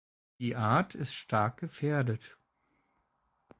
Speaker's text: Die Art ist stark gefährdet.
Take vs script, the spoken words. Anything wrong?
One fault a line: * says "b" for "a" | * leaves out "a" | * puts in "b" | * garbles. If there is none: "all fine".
all fine